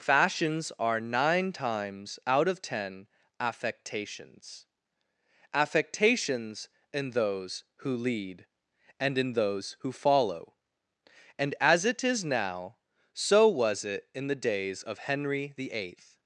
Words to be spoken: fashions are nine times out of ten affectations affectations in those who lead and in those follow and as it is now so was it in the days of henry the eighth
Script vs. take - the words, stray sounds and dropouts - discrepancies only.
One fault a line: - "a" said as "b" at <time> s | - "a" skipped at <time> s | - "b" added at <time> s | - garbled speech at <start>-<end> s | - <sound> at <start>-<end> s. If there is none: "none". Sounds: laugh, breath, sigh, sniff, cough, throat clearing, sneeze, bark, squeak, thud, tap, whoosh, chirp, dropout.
- "who" added at 9.8 s